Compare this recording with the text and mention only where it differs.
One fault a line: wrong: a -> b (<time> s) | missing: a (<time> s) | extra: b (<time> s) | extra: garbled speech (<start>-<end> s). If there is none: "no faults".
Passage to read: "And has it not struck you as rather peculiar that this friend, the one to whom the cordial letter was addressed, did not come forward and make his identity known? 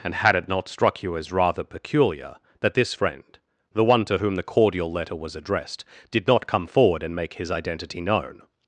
wrong: has -> had (0.1 s)